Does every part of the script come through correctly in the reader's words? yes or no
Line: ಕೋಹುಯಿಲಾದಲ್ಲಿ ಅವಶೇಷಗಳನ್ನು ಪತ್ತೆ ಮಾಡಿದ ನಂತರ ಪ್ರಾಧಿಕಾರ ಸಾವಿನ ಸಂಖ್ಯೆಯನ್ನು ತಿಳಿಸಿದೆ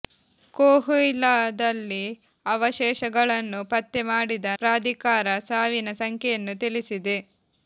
no